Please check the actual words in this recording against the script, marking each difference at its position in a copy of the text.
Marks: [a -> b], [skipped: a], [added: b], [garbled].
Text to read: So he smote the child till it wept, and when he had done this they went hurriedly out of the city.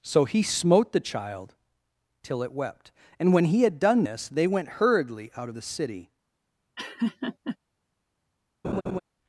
So he smote the child till it wept, and when he had done this they went hurriedly out of the city.